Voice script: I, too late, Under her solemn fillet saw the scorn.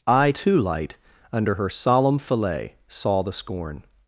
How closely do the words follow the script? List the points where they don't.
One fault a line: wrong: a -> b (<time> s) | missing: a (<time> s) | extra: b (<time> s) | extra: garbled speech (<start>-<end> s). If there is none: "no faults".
wrong: late -> light (0.6 s)